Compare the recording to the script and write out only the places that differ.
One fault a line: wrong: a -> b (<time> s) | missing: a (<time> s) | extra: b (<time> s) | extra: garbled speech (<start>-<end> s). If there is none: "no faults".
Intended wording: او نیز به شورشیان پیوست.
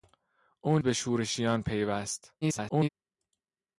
missing: نیز (0.8 s)
extra: garbled speech (2.4-2.9 s)